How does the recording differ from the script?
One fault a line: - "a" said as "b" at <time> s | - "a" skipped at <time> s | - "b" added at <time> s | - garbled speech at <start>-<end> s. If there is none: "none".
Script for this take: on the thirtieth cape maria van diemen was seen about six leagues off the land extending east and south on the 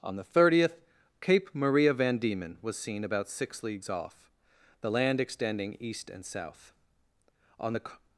none